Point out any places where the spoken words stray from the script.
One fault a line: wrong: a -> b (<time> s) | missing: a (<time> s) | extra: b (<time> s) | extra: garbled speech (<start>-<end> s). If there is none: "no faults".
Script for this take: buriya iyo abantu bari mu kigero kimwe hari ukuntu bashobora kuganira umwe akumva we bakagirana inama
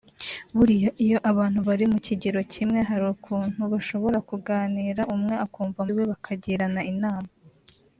no faults